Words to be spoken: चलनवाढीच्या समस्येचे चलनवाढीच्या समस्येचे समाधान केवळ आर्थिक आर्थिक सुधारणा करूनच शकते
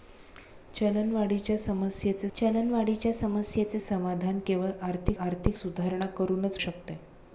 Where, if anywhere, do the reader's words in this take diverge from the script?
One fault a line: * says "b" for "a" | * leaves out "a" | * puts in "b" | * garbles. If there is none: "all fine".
all fine